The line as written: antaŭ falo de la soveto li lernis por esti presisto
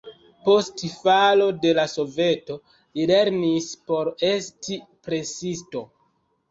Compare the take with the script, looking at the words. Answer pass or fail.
fail